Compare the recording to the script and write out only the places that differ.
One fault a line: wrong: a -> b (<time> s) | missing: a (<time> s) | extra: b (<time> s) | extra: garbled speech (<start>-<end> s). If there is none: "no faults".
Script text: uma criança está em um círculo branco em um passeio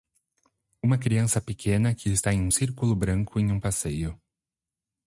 extra: pequena que (1.4 s)